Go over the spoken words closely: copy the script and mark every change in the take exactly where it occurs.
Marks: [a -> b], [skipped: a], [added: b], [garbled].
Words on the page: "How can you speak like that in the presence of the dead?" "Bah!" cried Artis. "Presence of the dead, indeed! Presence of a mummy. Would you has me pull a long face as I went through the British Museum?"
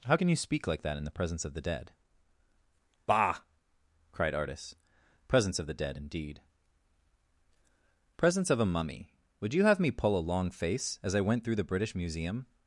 "How can you speak like that in the presence of the dead?" "Bah!" cried Artis. "Presence of the dead, indeed! Presence of a mummy. Would you [has -> have] me pull a long face as I went through the British Museum?"